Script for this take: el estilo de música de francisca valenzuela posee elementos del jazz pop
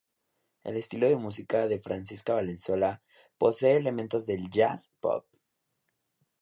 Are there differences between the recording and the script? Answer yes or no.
no